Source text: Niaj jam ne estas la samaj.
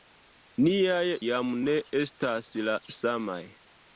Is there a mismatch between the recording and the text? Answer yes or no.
no